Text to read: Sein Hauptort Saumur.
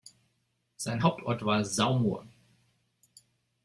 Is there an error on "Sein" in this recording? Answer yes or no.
no